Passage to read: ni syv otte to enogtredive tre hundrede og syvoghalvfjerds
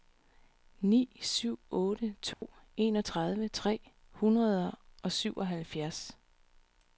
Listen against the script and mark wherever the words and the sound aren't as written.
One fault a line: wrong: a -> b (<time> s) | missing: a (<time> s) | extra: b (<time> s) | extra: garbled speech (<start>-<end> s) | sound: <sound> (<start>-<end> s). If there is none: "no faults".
sound: dropout (2.3-2.4 s)